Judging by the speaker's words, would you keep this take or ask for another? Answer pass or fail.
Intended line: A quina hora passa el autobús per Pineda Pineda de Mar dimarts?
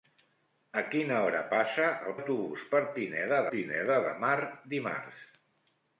pass